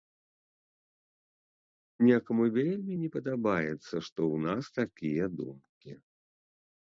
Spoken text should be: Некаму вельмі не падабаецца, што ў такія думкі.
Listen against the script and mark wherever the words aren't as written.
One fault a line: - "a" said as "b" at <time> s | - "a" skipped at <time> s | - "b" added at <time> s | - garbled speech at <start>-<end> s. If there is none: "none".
- "нас" added at 4.5 s